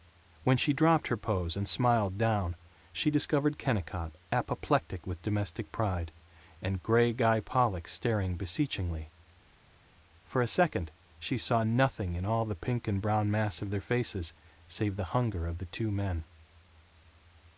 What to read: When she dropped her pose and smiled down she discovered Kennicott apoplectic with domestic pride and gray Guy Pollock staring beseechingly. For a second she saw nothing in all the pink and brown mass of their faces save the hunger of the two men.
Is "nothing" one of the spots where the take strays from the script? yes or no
no